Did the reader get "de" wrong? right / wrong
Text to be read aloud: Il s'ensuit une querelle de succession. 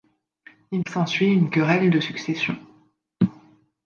right